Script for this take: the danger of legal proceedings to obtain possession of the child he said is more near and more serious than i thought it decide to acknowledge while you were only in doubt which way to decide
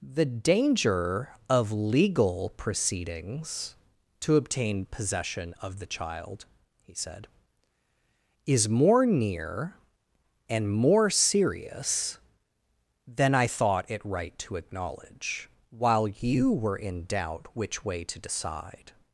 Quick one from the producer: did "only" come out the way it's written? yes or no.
no